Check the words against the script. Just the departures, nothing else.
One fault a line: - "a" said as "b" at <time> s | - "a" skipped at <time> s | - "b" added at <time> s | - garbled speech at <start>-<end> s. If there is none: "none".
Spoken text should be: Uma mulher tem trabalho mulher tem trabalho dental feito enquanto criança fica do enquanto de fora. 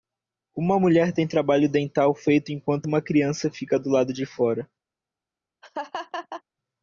- "mulher tem trabalho" skipped at 1.7 s
- "uma" added at 2.8 s
- "enquanto" said as "lado" at 3.9 s